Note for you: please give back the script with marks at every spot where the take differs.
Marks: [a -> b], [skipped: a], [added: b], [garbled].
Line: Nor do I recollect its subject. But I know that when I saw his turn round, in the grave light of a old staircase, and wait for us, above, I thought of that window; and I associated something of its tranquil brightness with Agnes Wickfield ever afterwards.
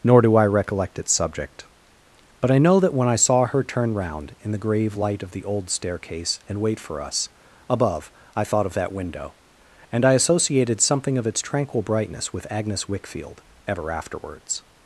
Nor do I recollect its subject. But I know that when I saw [his -> her] turn round, in the grave light of [a -> the] old staircase, and wait for us, above, I thought of that window; and I associated something of its tranquil brightness with Agnes Wickfield ever afterwards.